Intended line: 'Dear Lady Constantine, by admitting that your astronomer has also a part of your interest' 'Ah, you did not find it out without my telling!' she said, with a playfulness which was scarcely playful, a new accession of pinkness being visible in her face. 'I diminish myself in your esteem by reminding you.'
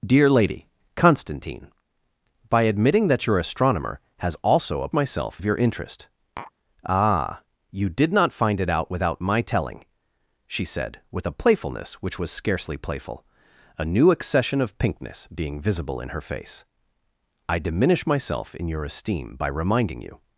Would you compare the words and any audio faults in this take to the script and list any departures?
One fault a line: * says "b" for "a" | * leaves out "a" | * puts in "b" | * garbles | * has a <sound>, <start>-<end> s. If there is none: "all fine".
* says "myself" for "part"
* has a tap, 6.4-6.5 s